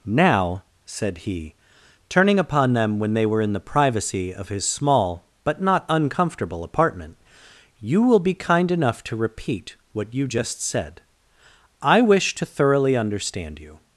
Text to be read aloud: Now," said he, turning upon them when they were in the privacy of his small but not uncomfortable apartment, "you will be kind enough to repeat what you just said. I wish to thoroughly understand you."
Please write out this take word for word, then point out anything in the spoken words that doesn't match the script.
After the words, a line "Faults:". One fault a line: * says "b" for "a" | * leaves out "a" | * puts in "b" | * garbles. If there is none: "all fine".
Now," said he, turning upon them when they were in the privacy of his small but not uncomfortable apartment, "you will be kind enough to repeat what you just said. I wish to thoroughly understand you."
Faults:
all fine